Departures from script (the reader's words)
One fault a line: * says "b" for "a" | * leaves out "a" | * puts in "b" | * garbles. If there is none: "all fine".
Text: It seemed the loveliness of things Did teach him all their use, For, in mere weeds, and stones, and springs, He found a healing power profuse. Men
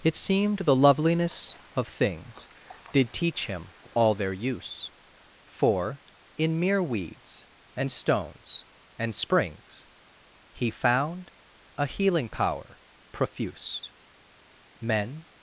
all fine